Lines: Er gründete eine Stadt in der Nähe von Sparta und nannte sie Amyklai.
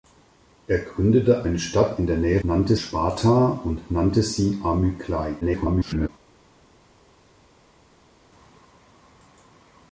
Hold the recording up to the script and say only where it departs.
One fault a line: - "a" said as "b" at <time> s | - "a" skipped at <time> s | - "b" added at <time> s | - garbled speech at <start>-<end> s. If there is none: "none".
- "von" said as "nannte" at 2.4 s
- garbled speech at 5.4-6.1 s